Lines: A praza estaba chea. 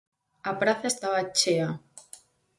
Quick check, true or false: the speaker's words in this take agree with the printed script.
true